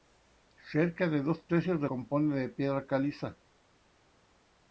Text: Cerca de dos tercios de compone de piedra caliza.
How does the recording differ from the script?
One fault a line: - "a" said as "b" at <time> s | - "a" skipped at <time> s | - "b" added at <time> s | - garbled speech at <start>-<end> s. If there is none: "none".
none